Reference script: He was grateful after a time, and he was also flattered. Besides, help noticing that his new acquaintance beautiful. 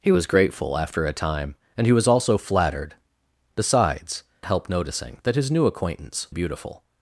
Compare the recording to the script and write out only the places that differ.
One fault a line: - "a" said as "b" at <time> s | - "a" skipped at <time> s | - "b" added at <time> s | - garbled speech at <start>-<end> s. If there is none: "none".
none